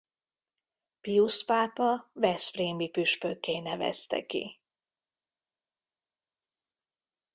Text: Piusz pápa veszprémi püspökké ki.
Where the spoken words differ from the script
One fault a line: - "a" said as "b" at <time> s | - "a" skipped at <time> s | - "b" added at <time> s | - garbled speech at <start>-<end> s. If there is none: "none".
- "nevezte" added at 3.6 s